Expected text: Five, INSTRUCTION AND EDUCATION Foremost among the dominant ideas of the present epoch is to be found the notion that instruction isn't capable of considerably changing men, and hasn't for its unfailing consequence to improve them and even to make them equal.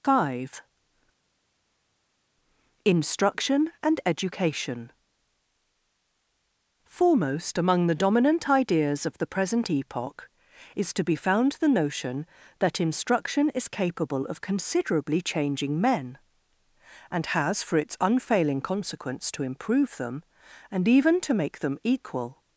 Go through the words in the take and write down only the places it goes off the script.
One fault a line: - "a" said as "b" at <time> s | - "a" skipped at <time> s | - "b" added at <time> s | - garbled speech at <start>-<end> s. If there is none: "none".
- "isn't" said as "is" at 13.5 s
- "hasn't" said as "has" at 17.3 s